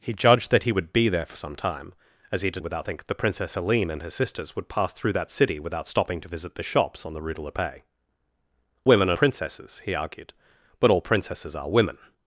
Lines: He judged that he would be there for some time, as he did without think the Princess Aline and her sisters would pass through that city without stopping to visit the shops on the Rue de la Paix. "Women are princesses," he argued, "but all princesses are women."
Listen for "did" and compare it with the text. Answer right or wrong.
right